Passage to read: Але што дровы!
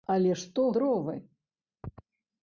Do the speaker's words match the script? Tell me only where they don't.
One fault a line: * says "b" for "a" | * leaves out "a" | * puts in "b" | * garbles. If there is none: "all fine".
all fine